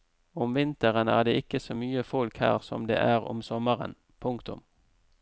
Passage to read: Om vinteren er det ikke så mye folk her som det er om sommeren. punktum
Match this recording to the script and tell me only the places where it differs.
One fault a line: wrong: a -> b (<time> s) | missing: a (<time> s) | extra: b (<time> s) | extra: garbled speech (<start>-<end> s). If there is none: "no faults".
no faults